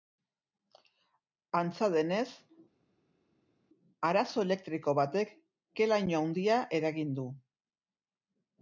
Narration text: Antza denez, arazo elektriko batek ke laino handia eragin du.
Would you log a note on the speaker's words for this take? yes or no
no